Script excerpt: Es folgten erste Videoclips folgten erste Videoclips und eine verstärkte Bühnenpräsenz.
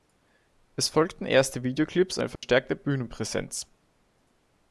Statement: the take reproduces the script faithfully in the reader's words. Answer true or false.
false